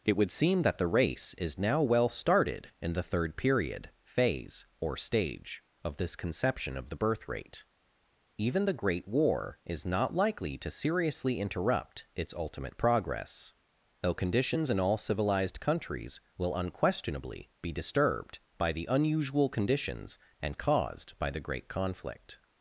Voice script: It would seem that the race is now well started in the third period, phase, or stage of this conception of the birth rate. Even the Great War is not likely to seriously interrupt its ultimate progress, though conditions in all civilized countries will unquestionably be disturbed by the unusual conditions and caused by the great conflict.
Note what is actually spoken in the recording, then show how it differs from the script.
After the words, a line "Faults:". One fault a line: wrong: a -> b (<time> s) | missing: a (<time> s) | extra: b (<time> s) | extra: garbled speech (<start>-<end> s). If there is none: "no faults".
It would seem that the race is now well started in the third period, phase, or stage of this conception of the birth rate. Even the Great War is not likely to seriously interrupt its ultimate progress, though conditions in all civilized countries will unquestionably be disturbed by the unusual conditions and caused by the great conflict.
Faults:
no faults